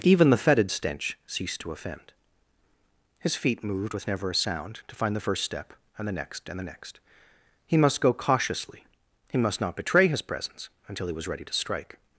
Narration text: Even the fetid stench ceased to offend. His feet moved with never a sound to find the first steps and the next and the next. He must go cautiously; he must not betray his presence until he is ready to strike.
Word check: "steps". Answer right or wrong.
wrong